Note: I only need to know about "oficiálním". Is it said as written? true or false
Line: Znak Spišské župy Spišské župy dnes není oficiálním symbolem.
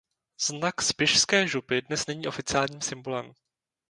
true